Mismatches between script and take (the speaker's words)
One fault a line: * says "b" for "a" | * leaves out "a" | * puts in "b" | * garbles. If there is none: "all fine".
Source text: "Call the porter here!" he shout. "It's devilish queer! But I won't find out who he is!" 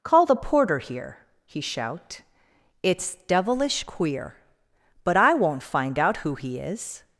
all fine